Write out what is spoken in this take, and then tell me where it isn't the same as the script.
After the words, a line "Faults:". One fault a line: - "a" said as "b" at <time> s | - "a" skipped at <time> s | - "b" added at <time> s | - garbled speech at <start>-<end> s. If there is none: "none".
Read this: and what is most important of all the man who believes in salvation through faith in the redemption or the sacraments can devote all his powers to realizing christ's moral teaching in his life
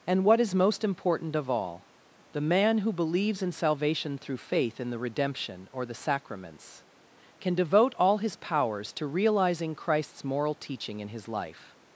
and what is most important of all the man who believes in salvation through faith in the redemption or the sacraments can devote all his powers to realizing christ's moral teaching in his life
Faults:
none